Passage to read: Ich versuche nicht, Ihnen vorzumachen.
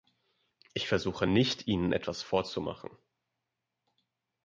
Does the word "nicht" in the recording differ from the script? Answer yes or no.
no